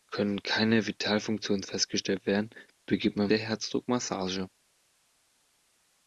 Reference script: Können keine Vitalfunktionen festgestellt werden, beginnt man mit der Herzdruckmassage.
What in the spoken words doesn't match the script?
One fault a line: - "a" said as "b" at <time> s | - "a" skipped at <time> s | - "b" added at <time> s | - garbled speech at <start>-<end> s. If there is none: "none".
- "mit" skipped at 3.3 s